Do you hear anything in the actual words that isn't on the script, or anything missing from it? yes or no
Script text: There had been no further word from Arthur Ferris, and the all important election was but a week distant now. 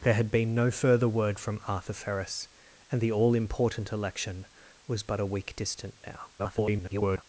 yes